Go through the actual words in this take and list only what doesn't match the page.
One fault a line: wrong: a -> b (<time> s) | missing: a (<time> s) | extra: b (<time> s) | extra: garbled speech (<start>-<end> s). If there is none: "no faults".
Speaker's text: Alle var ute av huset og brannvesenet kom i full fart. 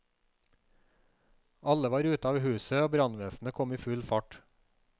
no faults